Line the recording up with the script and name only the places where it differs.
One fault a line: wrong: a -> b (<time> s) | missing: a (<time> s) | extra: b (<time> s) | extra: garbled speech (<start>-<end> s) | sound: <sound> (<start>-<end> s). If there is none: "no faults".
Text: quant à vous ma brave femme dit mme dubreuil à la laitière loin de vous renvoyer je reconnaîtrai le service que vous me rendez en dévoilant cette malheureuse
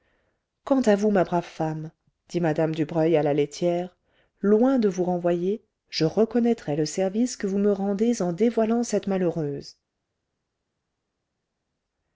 no faults